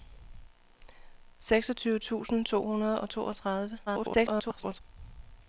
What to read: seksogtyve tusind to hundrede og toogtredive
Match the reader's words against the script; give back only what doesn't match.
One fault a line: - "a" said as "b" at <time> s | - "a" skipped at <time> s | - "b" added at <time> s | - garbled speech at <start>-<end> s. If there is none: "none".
- garbled speech at 3.9-4.8 s